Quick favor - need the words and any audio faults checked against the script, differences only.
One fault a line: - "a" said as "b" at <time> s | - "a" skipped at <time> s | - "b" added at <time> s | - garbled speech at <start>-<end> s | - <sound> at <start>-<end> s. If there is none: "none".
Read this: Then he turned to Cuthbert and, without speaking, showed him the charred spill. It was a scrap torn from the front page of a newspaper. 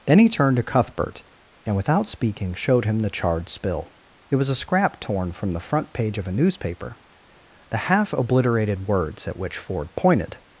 - "The half obliterated words at which Ford pointed" added at 7.7 s